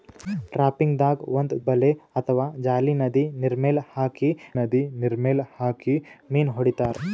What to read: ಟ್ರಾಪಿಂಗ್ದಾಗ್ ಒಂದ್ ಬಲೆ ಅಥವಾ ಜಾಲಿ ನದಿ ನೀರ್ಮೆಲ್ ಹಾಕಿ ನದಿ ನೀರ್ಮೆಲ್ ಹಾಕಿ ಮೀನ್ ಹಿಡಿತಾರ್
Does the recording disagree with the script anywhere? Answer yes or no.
no